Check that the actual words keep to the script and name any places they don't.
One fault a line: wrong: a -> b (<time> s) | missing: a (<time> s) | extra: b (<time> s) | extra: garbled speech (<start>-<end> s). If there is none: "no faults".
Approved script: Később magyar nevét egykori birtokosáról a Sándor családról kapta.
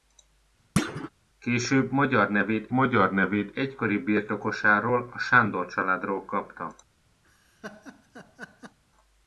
extra: magyar nevét (2.7 s)